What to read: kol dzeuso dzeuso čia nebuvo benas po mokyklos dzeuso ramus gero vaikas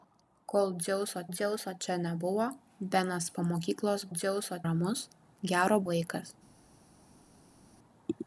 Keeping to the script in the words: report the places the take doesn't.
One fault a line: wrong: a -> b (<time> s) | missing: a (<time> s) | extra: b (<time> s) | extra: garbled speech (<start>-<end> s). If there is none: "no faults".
no faults